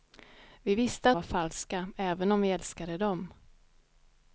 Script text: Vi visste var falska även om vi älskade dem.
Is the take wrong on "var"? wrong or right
right